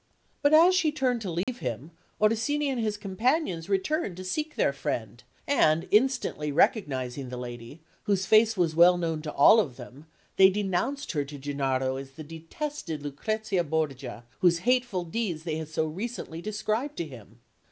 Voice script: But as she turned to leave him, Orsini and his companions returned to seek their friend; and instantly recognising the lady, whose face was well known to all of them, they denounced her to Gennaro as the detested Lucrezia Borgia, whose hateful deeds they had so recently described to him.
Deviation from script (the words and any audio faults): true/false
true